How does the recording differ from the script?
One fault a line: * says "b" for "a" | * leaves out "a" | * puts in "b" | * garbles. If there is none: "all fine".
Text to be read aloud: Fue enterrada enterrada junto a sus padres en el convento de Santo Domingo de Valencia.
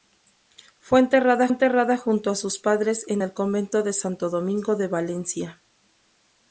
all fine